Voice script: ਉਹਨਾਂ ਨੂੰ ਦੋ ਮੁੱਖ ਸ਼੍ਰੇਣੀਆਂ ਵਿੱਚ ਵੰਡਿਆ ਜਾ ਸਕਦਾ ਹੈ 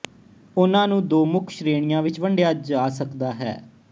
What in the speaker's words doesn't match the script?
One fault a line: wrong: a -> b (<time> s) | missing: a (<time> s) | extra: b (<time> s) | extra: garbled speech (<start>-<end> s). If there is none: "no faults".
no faults